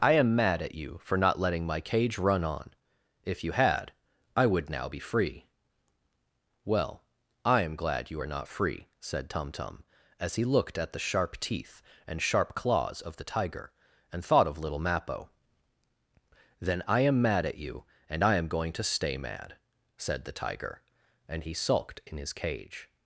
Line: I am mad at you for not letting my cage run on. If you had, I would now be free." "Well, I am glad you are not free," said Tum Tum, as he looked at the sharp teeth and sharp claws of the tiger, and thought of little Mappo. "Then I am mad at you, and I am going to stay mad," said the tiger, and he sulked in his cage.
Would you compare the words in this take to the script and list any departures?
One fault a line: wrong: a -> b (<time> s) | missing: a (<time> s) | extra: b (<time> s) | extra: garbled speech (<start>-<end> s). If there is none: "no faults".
no faults